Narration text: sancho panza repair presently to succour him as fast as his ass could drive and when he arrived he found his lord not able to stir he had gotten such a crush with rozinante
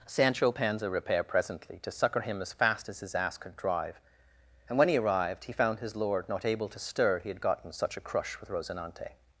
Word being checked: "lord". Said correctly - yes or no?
yes